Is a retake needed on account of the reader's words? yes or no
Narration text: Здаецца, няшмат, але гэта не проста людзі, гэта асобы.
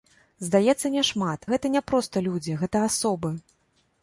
yes